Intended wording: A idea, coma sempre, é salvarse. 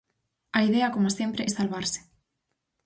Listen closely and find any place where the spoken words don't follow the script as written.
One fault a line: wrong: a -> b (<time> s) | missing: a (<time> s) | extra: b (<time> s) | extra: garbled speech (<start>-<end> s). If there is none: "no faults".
no faults